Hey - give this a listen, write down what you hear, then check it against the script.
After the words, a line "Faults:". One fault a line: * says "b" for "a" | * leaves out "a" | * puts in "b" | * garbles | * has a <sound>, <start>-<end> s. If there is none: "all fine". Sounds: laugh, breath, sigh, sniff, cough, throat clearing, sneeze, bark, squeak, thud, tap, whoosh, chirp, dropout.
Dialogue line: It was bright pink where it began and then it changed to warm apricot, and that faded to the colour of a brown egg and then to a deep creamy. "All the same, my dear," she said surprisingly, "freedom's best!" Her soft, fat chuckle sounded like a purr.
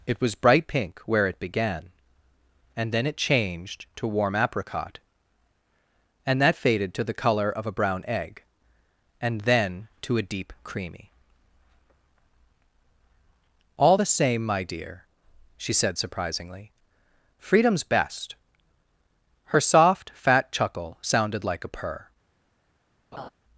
It was bright pink where it began and then it changed to warm apricot, and that faded to the colour of a brown egg and then to a deep creamy. "All the same, my dear," she said surprisingly, "freedom's best!" Her soft, fat chuckle sounded like a purr.
Faults:
* has a laugh, 23.1-23.3 s